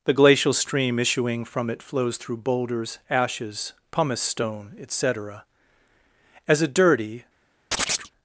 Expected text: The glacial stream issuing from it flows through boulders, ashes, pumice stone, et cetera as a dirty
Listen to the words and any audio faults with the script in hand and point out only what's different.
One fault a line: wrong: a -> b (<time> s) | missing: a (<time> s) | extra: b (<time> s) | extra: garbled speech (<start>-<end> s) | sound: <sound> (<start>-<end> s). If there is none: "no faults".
sound: chirp (7.7-8.1 s)